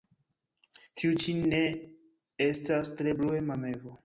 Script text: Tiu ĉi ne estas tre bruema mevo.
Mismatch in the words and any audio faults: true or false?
false